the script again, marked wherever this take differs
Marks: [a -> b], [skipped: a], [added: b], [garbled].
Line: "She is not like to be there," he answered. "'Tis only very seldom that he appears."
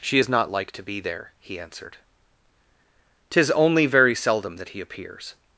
"She is not like to be there," he answered. "'Tis only very seldom that he appears."